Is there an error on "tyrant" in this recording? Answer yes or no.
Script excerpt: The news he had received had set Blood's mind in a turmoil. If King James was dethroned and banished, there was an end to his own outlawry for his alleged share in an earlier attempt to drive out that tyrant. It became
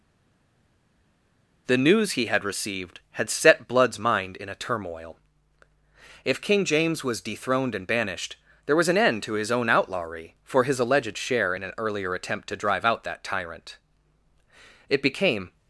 no